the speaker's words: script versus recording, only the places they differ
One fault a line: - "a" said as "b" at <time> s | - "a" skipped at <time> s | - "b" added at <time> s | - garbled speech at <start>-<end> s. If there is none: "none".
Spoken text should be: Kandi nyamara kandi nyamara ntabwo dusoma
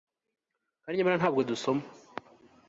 - "kandi nyamara" skipped at 1.2 s